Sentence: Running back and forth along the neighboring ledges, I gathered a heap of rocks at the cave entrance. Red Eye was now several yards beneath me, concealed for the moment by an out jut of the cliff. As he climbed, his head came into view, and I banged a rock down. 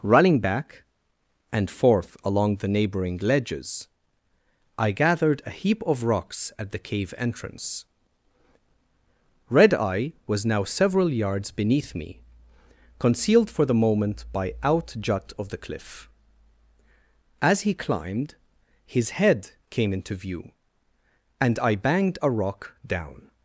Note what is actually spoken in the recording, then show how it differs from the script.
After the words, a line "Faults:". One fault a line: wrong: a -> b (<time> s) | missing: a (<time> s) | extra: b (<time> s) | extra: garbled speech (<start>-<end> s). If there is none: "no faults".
Running back and forth along the neighboring ledges, I gathered a heap of rocks at the cave entrance. Red Eye was now several yards beneath me, concealed for the moment by out jut of the cliff. As he climbed, his head came into view, and I banged a rock down.
Faults:
missing: an (14.5 s)